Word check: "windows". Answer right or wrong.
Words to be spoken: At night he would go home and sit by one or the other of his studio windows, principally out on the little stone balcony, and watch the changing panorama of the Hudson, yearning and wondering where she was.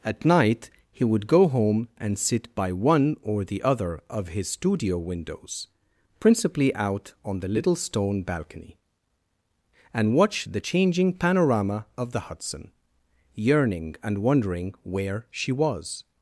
right